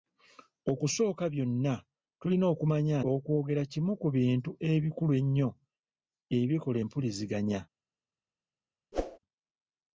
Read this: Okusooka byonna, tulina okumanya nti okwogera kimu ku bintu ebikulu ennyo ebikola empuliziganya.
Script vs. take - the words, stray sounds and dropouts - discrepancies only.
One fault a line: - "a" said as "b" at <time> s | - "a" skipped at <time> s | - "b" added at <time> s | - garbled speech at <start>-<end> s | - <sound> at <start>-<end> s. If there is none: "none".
- "nti" skipped at 3.0 s
- whoosh at 8.9-9.2 s